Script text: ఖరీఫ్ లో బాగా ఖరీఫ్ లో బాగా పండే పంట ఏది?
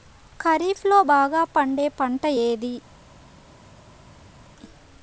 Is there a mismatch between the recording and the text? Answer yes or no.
yes